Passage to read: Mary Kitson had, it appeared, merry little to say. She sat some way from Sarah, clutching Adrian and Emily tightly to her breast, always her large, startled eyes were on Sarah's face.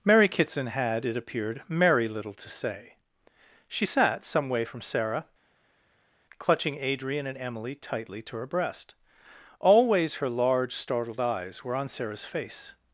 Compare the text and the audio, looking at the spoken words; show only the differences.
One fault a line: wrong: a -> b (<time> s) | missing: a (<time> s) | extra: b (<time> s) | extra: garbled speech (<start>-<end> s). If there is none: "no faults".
no faults